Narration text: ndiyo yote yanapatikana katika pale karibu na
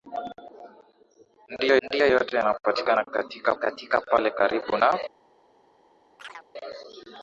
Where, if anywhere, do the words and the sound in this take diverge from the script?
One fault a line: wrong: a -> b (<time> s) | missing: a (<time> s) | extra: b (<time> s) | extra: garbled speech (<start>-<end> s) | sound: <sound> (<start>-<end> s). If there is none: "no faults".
extra: ndiyo (1.8 s)
extra: katika (3.5 s)
sound: chirp (6.2-6.5 s)